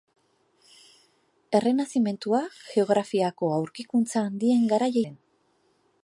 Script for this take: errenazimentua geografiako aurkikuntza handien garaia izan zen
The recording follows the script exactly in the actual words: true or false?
false